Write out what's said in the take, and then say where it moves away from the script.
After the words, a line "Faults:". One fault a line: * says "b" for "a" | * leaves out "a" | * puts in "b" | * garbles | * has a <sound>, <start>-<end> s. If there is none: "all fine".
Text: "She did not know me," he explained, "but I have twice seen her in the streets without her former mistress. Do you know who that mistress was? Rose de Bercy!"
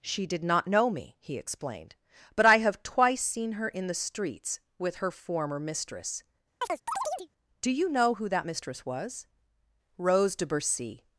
"She did not know me," he explained, "but I have twice seen her in the streets with her former mistress. Do you know who that mistress was? Rose de Bercy!"
Faults:
* says "with" for "without"
* has a chirp, 6.6-7.3 s